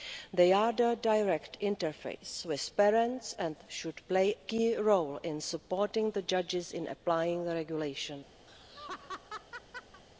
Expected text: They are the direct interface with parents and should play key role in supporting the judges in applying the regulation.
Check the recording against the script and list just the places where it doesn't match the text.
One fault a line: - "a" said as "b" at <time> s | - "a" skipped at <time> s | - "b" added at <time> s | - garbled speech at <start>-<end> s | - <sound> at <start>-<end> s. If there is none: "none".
- laugh at 8.5-10.0 s